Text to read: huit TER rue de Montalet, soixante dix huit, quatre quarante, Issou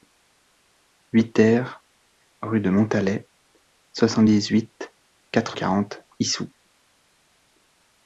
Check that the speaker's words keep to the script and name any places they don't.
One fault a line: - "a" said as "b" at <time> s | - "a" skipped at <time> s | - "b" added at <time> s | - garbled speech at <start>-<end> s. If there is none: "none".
none